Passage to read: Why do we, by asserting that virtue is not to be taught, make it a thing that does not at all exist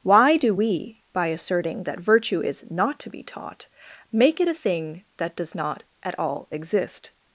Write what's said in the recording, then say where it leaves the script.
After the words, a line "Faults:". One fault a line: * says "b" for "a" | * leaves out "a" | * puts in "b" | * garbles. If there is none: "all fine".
Why do we, by asserting that virtue is not to be taught, make it a thing that does not at all exist
Faults:
all fine